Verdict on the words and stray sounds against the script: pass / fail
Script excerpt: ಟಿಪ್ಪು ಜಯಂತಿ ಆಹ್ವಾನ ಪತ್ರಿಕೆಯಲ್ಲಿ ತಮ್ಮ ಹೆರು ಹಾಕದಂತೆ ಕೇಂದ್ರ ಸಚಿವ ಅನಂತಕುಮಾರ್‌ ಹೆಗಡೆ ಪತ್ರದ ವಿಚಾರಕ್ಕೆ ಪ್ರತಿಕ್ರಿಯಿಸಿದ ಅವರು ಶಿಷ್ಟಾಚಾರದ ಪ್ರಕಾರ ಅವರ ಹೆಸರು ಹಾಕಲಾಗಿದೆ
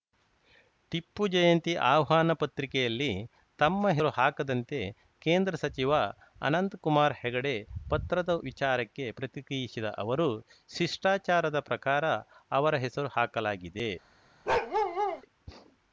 fail